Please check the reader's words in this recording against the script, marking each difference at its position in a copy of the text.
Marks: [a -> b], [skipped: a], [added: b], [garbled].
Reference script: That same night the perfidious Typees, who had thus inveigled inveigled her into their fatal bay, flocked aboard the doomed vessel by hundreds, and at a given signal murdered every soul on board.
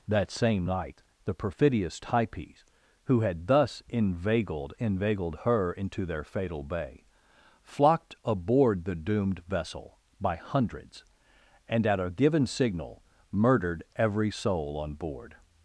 That same night the perfidious Typees, who had thus inveigled inveigled her into their fatal bay, flocked aboard the doomed vessel by hundreds, and at a given signal murdered every soul on board.